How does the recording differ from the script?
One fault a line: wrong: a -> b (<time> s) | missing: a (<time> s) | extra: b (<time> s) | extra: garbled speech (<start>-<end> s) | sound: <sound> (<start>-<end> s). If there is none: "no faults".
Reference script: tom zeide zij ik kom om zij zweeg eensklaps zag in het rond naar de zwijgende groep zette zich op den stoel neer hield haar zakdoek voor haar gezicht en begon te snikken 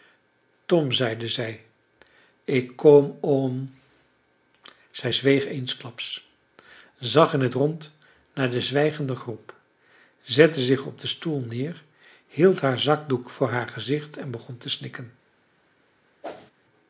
sound: whoosh (16.2-16.5 s)